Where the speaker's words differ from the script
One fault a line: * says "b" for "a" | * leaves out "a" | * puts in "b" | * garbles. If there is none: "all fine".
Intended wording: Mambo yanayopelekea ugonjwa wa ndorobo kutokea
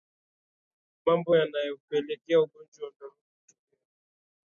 all fine